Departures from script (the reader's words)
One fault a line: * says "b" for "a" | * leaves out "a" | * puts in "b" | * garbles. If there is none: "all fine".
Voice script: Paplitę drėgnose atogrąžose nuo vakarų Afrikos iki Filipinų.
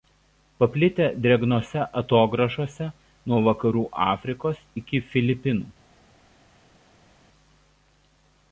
all fine